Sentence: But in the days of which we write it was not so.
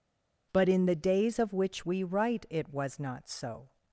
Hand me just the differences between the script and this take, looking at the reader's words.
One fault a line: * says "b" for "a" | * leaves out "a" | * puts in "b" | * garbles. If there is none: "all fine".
all fine